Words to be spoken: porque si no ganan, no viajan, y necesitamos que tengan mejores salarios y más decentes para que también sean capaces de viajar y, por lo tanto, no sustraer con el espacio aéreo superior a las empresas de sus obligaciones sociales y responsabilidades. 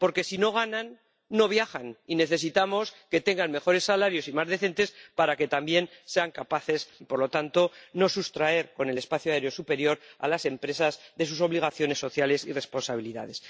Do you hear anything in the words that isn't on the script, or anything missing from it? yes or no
yes